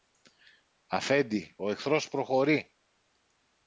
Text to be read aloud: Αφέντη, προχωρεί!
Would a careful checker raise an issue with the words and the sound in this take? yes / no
yes